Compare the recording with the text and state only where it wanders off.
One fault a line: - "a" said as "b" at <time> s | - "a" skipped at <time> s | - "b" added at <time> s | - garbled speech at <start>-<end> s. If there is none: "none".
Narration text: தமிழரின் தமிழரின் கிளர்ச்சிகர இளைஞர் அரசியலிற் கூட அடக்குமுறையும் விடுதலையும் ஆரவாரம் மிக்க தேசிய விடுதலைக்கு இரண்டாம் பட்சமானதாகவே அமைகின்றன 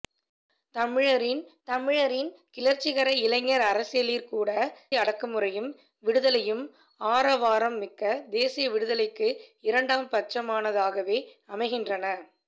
none